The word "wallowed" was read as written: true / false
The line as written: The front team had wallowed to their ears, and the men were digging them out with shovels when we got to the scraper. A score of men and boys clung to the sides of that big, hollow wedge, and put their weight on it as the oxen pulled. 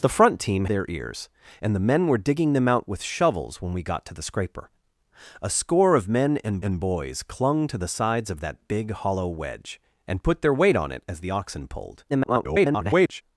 false